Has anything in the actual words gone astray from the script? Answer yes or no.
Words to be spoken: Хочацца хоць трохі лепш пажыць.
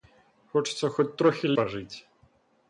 yes